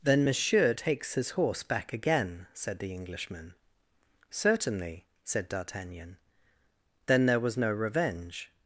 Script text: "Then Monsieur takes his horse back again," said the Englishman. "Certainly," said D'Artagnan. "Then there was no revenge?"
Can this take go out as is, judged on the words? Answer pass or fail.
pass